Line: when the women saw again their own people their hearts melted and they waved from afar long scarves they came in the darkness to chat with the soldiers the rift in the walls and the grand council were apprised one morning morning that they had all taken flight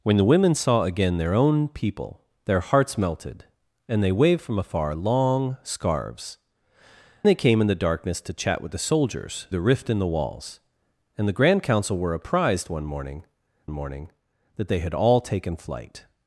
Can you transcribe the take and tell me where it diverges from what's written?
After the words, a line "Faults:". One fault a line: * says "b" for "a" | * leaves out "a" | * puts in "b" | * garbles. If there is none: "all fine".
when the women saw again their own people their hearts melted and they waved from afar long scarves they came in the darkness to chat with the soldiers the rift in the walls and the grand council were apprised one morning morning that they had all taken flight
Faults:
all fine